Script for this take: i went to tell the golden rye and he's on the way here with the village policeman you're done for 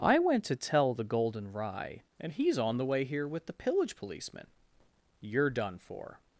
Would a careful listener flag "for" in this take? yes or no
no